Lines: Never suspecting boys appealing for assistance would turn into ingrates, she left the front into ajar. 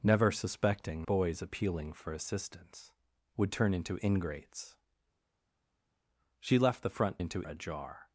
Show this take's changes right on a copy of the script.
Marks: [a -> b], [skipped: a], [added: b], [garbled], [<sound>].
Never suspecting boys appealing for assistance would turn into ingrates, she left the front into ajar.